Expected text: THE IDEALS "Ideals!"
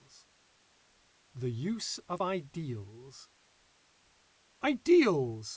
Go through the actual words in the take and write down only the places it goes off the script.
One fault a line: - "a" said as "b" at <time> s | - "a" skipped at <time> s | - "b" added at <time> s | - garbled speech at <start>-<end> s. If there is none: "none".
- "USE OF" added at 1.5 s